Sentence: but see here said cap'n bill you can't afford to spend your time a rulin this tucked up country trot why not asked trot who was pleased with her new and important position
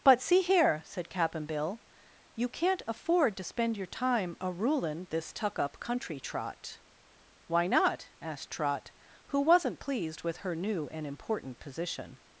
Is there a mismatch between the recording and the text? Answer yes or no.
yes